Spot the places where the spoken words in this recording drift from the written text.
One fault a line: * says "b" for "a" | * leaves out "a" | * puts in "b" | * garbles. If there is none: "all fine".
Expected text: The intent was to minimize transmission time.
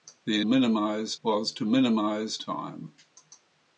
* says "minimize" for "intent"
* leaves out "transmission"